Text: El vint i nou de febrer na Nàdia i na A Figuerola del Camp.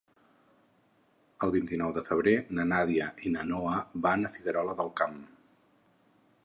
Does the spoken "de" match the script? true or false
true